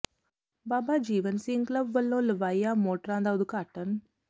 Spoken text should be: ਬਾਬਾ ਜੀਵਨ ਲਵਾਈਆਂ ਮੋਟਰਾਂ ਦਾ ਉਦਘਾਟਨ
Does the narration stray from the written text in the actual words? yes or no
yes